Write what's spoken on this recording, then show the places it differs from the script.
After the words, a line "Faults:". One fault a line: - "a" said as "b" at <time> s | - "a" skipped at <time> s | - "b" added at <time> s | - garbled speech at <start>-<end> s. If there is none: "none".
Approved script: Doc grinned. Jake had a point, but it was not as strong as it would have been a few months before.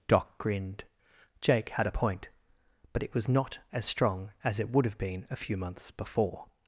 Doc grinned. Jake had a point, but it was not as strong as it would have been a few months before.
Faults:
none